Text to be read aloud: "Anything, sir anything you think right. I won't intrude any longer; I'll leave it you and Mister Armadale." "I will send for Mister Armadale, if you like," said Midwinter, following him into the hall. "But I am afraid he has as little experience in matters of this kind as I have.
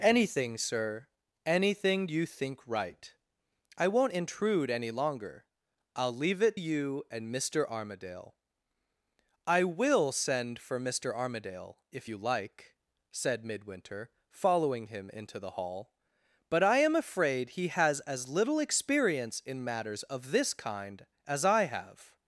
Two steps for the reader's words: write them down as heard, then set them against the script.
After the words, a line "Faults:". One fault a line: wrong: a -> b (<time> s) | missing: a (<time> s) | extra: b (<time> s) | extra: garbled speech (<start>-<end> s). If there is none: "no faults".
"Anything, sir anything you think right. I won't intrude any longer; I'll leave it you and Mister Armadale." "I will send for Mister Armadale, if you like," said Midwinter, following him into the hall. "But I am afraid he has as little experience in matters of this kind as I have.
Faults:
no faults